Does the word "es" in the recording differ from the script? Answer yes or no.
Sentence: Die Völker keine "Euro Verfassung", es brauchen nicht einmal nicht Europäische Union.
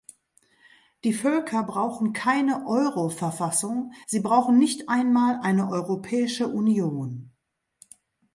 yes